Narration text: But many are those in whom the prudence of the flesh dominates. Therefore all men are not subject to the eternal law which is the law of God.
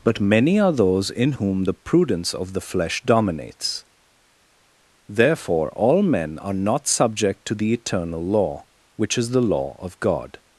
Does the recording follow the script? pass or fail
pass